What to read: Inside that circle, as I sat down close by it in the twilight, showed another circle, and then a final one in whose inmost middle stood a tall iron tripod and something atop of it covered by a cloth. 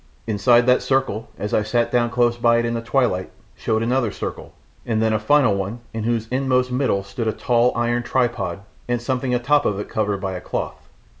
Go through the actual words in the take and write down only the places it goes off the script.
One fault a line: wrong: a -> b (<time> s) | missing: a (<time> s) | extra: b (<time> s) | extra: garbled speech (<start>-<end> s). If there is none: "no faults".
no faults